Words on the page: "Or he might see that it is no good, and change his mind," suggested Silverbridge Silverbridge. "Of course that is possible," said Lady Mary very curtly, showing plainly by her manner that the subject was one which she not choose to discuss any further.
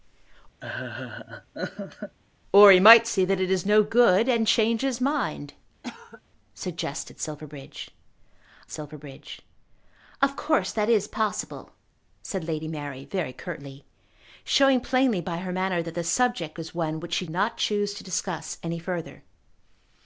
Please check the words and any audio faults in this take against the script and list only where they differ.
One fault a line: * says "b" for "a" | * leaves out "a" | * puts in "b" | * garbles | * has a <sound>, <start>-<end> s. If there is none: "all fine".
* has a laugh, 0.6-2.2 s
* has a cough, 5.8-6.2 s